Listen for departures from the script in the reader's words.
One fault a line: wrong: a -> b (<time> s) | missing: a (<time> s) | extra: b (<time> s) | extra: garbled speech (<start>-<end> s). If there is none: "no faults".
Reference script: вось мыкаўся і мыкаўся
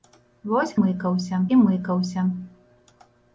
no faults